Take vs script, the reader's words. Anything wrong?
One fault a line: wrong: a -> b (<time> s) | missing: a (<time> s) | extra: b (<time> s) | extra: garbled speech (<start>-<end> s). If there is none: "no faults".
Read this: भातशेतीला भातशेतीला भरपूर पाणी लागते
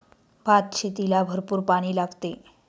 missing: भातशेतीला (1.2 s)